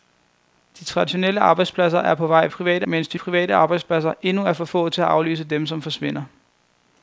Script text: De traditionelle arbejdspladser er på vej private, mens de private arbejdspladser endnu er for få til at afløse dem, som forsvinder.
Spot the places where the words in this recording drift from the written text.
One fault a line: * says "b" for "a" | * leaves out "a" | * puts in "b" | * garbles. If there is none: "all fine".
all fine